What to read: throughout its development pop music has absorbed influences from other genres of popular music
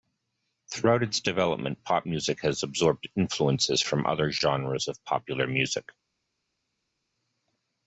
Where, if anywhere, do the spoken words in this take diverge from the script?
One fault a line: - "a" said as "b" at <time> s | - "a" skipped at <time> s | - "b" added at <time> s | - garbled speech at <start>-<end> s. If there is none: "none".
none